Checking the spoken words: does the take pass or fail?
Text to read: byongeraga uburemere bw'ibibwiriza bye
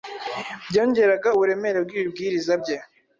pass